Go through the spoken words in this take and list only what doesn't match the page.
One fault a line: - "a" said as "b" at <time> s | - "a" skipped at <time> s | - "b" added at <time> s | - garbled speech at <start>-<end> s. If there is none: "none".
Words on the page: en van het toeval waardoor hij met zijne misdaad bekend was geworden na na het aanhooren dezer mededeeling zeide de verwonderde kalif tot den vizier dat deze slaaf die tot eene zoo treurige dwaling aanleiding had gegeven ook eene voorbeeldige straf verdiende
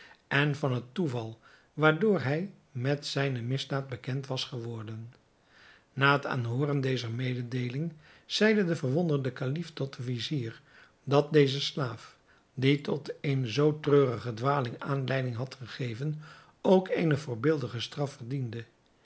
- "na" skipped at 6.1 s